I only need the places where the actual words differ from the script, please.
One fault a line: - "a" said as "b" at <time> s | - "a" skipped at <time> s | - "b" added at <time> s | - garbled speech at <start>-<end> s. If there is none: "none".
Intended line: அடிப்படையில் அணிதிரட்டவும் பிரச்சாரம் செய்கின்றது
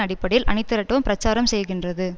none